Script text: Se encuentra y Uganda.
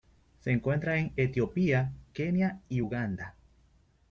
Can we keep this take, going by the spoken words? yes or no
no